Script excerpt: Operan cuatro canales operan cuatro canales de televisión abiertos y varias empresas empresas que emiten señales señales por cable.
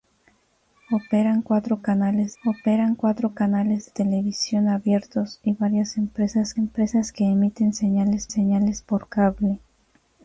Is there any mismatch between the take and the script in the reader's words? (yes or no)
no